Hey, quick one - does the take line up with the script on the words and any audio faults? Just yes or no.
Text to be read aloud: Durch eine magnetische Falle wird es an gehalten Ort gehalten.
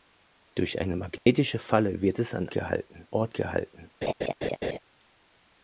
no